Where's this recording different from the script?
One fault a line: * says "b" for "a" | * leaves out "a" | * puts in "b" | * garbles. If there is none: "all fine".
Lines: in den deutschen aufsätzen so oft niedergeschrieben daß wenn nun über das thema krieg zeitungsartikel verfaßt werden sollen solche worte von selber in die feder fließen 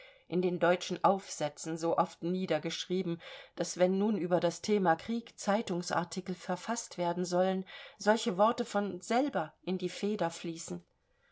all fine